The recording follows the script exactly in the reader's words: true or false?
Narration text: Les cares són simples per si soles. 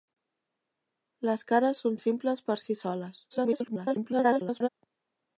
false